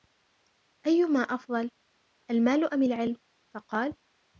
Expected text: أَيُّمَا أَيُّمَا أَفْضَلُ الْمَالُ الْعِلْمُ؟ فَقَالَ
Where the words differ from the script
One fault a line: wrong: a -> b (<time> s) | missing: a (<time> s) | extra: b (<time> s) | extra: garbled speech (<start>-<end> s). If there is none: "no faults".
missing: أَيُّمَا (1.2 s)
extra: أَمْ (2.7 s)